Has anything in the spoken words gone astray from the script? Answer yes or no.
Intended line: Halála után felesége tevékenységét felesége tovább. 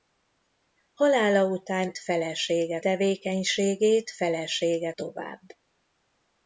no